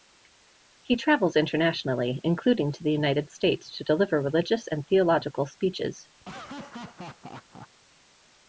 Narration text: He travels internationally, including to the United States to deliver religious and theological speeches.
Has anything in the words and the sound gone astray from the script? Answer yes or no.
yes